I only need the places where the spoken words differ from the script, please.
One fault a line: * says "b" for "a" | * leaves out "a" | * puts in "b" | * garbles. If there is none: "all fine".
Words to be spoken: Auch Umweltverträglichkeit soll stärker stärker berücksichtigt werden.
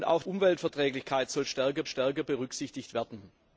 all fine